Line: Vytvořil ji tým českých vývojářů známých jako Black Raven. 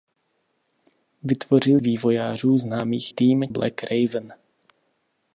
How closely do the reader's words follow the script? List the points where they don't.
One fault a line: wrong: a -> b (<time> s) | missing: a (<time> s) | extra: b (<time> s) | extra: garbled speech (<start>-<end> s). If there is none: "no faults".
missing: ji tým českých (1.8 s)
wrong: jako -> tým (3.1 s)